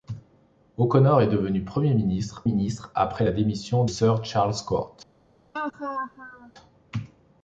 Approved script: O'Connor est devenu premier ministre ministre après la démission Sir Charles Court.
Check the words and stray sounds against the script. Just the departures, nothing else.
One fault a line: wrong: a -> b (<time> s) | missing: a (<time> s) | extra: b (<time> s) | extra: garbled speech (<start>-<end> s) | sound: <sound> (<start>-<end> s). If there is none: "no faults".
sound: laugh (5.5-6.5 s)